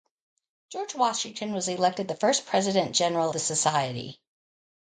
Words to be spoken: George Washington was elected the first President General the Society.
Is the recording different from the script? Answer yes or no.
no